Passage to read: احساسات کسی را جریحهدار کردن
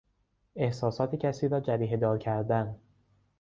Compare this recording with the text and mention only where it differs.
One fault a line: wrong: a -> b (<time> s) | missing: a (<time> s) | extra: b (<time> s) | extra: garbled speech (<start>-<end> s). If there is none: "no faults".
no faults